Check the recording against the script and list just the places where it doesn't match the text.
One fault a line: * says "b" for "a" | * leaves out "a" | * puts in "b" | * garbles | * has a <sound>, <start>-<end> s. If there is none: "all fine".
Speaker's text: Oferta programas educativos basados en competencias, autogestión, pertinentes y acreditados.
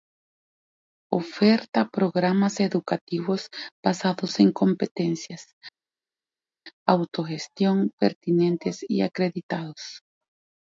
all fine